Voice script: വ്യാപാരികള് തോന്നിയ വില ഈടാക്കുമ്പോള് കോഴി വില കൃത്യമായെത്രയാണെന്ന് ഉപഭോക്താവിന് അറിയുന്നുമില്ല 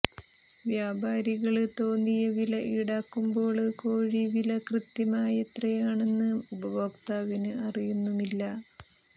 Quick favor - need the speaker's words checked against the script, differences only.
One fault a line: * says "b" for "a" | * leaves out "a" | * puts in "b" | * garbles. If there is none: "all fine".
all fine